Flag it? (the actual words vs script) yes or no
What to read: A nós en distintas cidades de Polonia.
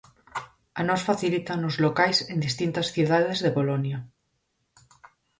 yes